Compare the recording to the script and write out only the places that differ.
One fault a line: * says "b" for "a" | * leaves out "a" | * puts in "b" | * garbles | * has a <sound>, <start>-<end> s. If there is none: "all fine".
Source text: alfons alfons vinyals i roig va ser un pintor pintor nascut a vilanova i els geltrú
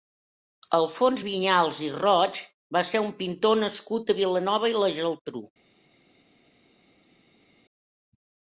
* leaves out "alfons"
* leaves out "pintor"
* says "la" for "els"